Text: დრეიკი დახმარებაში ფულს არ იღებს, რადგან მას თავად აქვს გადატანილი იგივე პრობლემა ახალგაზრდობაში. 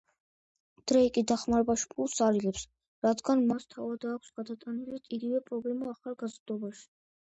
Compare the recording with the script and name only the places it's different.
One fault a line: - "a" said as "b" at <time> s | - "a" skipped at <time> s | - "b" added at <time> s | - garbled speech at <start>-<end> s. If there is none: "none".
none